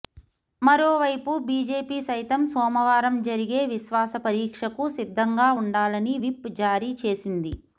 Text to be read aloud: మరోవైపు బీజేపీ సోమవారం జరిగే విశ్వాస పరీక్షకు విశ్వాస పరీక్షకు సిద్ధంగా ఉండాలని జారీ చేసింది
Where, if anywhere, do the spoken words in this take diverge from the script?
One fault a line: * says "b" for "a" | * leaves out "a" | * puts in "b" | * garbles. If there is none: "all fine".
* puts in "సైతం"
* leaves out "విశ్వాస పరీక్షకు"
* puts in "విప్"